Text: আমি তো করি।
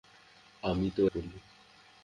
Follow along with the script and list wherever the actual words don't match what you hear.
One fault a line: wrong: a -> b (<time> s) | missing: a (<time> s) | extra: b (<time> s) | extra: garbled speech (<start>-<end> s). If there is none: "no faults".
no faults